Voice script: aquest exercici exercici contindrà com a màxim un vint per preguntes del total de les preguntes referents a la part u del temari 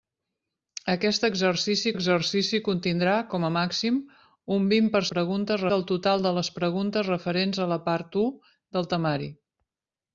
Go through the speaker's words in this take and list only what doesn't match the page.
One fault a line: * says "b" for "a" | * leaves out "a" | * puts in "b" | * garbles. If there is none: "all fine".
all fine